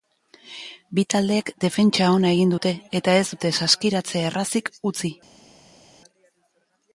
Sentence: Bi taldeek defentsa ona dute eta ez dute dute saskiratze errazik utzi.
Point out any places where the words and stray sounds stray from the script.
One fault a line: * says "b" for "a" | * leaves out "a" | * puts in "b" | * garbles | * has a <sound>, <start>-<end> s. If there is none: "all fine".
* puts in "egin"
* leaves out "dute"